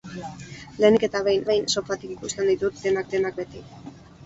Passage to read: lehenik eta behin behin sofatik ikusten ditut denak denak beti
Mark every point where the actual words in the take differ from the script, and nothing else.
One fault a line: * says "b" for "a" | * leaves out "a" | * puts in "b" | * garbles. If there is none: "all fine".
all fine